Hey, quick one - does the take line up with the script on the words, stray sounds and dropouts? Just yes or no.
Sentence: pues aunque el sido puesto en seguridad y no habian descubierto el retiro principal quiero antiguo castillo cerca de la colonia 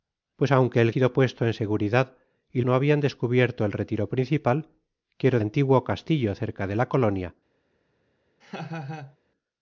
no